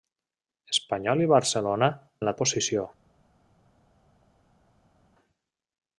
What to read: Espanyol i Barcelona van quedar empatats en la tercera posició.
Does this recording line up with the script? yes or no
no